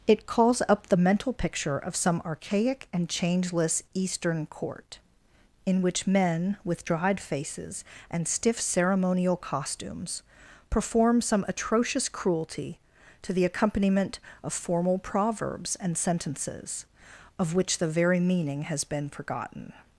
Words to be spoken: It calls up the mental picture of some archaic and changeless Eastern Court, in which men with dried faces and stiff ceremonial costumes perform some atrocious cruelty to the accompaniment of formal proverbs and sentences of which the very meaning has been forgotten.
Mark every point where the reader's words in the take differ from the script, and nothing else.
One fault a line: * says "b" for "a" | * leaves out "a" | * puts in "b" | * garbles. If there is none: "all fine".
all fine